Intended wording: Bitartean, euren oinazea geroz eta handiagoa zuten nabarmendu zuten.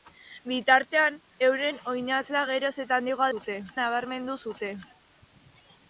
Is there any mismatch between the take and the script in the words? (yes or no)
no